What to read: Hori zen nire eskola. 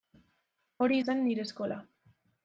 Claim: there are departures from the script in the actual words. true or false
false